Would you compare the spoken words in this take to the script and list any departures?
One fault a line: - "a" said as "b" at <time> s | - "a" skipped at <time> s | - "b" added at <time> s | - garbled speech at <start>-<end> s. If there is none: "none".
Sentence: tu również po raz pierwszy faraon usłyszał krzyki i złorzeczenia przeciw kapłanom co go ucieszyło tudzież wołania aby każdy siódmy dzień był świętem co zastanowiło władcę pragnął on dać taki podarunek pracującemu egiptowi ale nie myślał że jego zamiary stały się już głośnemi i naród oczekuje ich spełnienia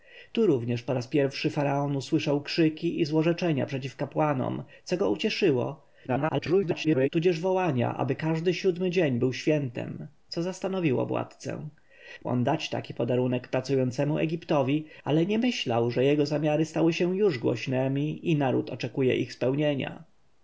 - garbled speech at 6.1-7.1 s
- "pragnął" skipped at 11.7 s